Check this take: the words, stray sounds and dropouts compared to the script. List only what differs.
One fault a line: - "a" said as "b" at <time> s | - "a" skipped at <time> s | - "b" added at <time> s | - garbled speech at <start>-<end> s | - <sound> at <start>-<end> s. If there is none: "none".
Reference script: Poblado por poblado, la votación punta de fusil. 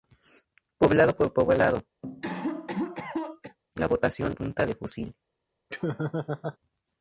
- cough at 2.0-3.6 s
- laugh at 5.7-6.6 s